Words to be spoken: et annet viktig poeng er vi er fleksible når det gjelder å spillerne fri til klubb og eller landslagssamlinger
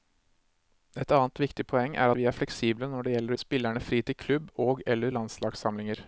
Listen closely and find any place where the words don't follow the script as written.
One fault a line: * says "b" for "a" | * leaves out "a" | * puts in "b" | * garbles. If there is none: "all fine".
all fine